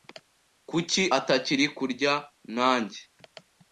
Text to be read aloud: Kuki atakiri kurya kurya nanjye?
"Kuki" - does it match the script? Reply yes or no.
yes